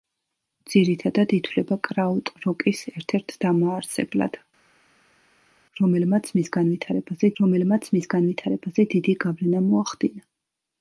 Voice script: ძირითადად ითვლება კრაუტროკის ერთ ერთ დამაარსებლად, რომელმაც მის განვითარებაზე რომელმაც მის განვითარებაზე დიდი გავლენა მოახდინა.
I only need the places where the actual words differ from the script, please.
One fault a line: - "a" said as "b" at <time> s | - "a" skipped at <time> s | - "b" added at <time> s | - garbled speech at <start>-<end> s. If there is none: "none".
none